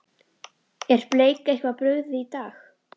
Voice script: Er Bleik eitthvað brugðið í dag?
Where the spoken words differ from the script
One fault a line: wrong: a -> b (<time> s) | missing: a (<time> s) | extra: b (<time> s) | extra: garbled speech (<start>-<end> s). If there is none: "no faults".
no faults